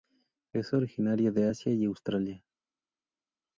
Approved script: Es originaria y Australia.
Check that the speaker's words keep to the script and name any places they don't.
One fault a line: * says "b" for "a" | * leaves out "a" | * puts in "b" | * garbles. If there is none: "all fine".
* puts in "de Asia"